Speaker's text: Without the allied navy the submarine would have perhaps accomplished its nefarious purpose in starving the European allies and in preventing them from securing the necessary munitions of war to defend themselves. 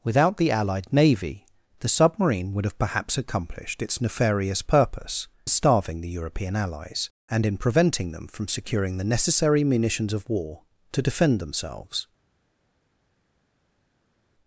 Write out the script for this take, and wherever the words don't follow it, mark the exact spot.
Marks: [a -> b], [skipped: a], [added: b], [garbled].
Without the allied navy the submarine would have perhaps accomplished its nefarious purpose [skipped: in] starving the European allies and in preventing them from securing the necessary munitions of war to defend themselves.